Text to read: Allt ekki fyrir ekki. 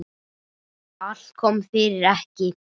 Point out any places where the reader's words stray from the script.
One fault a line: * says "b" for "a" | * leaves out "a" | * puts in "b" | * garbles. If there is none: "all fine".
* says "kom" for "ekki"